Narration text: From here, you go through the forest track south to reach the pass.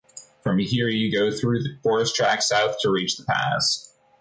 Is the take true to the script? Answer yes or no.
yes